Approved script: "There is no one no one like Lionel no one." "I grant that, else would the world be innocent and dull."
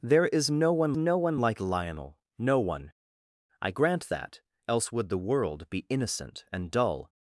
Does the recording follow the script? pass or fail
pass